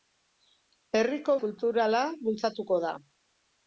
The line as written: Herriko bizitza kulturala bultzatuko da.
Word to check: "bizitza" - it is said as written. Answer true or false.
false